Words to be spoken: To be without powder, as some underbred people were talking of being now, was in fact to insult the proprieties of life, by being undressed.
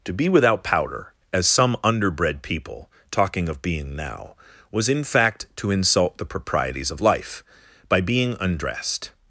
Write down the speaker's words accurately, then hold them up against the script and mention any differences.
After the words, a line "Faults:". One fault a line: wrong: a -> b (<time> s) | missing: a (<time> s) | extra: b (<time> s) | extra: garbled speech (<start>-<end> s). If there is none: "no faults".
To be without powder, as some underbred people talking of being now, was in fact to insult the proprieties of life, by being undressed.
Faults:
missing: were (2.9 s)